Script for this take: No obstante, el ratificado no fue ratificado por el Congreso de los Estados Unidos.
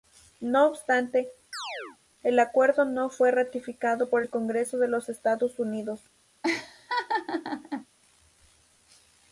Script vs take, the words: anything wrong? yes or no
yes